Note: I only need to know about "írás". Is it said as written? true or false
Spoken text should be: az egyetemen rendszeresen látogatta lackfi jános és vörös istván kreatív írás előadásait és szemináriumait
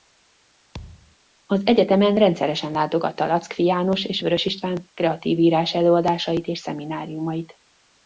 true